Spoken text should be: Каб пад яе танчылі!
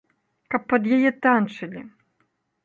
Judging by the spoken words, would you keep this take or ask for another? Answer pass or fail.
pass